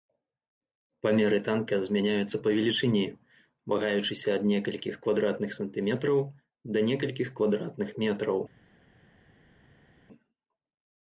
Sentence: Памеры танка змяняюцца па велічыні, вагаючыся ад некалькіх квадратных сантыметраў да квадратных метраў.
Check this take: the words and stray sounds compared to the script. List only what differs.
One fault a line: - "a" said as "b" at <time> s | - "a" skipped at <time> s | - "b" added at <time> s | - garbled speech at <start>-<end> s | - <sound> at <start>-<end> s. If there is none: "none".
- "некалькіх" added at 6.9 s